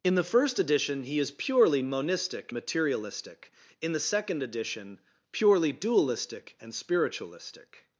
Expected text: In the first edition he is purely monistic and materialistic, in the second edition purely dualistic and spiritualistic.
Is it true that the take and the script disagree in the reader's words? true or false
true